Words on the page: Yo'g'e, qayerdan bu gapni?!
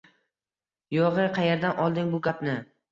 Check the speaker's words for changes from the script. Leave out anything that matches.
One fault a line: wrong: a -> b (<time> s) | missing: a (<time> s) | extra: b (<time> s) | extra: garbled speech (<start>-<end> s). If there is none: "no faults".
extra: olding (1.9 s)